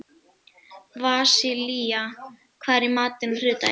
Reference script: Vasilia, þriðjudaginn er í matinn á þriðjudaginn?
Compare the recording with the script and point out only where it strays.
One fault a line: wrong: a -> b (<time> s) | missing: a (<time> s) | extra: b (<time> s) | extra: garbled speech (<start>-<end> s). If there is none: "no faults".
wrong: þriðjudaginn -> hvað (2.6 s)